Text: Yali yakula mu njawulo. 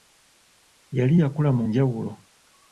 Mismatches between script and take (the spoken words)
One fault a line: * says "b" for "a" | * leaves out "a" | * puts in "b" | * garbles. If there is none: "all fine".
all fine